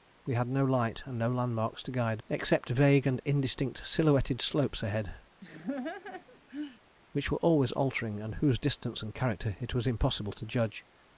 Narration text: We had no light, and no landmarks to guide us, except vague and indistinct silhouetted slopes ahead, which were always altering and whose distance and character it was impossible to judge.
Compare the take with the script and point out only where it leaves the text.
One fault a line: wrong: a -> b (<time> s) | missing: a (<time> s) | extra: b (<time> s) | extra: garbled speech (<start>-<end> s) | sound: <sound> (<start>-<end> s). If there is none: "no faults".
missing: us (2.2 s)
sound: laugh (5.4-6.8 s)